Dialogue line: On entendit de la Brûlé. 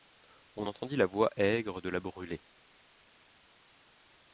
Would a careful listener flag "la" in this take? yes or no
no